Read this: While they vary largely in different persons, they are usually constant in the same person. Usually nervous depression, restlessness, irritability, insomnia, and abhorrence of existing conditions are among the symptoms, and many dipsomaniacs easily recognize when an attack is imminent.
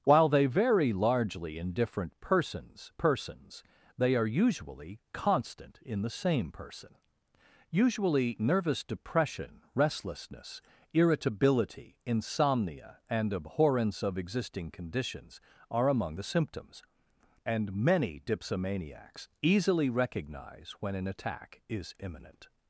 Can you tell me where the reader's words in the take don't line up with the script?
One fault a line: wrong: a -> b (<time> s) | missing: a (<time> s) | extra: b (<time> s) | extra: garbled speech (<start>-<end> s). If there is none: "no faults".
extra: persons (3.0 s)